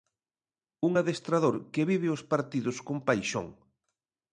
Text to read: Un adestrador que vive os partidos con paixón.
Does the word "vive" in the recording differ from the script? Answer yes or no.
no